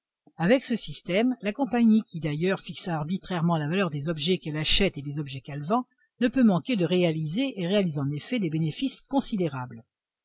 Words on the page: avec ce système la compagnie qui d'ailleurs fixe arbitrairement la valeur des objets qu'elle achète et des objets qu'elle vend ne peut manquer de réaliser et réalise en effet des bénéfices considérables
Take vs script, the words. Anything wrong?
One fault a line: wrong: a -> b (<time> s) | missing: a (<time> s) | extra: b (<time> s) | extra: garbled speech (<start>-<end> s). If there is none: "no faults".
no faults